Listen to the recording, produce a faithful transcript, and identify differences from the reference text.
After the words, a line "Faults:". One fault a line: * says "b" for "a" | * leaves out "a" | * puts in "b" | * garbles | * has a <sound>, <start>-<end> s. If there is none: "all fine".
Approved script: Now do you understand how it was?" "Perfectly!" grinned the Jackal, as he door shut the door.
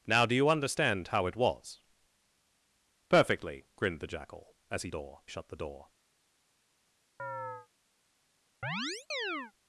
Now do you understand how it was?" "Perfectly!" grinned the Jackal, as he door shut the door.
Faults:
* has a chirp, 7.2-7.7 s
* has a chirp, 8.6-9.5 s